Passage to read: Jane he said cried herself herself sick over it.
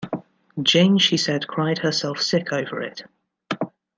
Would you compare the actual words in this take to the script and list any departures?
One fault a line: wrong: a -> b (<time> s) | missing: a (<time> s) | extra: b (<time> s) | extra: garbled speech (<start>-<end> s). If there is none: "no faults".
wrong: he -> she (1.0 s)
missing: herself (2.2 s)